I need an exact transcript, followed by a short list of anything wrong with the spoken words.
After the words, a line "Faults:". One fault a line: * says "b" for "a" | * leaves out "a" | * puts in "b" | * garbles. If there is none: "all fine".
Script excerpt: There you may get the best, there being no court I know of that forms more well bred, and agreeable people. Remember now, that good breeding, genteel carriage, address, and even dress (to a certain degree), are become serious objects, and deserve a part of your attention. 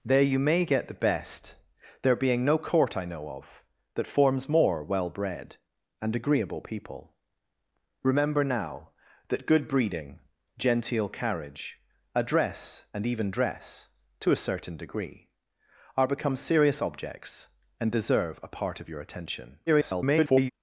There you may get the best, there being no court I know of that forms more well bred, and agreeable people. Remember now, that good breeding, genteel carriage, address, and even dress (to a certain degree), are become serious objects, and deserve a part of your attention. [garbled]
Faults:
* garbles